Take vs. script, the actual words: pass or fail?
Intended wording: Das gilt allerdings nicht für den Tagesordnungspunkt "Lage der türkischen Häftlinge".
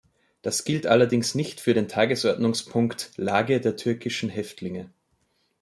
pass